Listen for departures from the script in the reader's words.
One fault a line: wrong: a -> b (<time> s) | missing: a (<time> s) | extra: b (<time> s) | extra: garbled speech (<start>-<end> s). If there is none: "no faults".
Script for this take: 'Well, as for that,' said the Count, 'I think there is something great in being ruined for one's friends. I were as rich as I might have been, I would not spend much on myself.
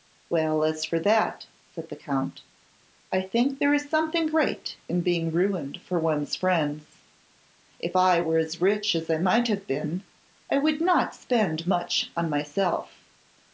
extra: If (7.8 s)